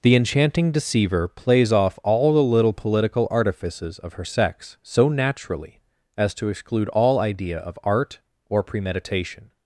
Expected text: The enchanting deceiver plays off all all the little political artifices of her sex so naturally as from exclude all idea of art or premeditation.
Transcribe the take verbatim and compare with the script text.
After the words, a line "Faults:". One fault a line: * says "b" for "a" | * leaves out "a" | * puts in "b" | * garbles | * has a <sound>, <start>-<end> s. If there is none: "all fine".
The enchanting deceiver plays off all the little political artifices of her sex so naturally as to exclude all idea of art or premeditation.
Faults:
* leaves out "all"
* says "to" for "from"